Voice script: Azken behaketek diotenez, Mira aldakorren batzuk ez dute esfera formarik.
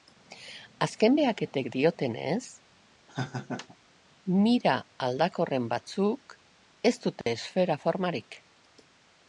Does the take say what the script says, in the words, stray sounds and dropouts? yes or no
no